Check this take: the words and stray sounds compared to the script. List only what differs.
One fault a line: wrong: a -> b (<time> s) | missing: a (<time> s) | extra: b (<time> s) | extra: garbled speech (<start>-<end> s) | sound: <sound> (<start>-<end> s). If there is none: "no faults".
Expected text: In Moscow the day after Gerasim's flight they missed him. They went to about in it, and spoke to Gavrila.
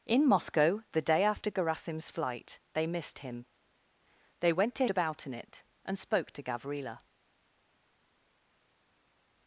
no faults